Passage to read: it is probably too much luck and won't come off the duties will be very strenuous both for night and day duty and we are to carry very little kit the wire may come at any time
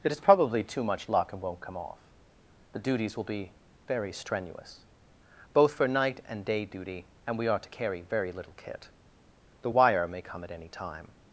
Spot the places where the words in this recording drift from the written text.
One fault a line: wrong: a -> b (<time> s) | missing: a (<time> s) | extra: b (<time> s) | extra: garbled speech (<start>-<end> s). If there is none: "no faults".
no faults